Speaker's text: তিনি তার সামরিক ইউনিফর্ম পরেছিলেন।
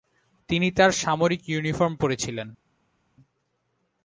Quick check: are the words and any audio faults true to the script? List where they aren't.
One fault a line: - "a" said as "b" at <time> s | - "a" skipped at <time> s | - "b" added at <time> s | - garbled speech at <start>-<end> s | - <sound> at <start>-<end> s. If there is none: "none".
none